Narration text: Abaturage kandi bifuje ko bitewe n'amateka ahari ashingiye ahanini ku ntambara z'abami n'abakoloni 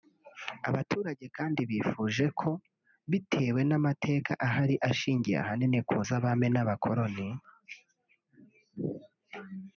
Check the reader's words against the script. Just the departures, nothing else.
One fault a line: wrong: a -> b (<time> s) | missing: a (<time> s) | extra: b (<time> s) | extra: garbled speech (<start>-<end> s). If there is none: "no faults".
missing: ntambara (6.0 s)